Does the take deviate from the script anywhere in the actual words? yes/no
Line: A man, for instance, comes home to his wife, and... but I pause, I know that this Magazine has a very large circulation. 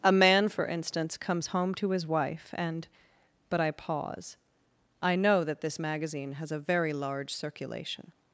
no